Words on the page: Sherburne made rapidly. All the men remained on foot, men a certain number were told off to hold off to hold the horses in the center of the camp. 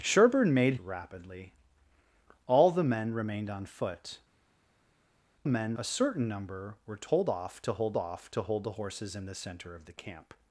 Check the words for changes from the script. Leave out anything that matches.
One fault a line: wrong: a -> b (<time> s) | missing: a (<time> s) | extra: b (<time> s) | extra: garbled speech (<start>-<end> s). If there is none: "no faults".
no faults